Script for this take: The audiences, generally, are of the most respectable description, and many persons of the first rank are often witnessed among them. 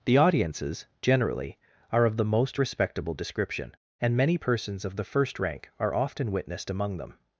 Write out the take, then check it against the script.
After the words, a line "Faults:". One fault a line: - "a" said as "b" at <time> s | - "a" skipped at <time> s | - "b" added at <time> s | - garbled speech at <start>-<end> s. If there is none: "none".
The audiences, generally, are of the most respectable description, and many persons of the first rank are often witnessed among them.
Faults:
none